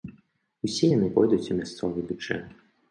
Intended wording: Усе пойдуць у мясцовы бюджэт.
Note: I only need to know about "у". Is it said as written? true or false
true